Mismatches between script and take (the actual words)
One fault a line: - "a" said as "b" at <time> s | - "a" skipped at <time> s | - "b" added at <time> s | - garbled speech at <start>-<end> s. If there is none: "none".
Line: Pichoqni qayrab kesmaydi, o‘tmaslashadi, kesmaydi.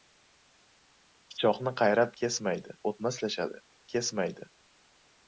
none